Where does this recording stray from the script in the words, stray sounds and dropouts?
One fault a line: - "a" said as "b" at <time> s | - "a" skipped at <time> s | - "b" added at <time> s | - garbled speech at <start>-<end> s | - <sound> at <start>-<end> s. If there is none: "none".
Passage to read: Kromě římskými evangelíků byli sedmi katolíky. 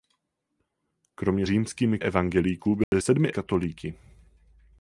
- dropout at 2.8-2.9 s